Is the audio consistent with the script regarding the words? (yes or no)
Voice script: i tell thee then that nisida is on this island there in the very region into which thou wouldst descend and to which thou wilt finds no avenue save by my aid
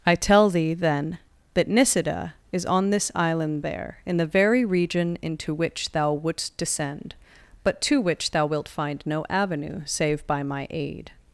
no